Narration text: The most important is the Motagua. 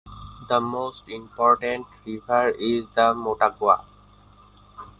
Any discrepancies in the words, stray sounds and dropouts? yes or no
yes